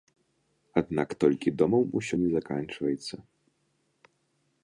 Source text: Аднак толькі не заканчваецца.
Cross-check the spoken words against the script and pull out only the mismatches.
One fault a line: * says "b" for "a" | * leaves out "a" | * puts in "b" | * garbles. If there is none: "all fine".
* puts in "домам усё"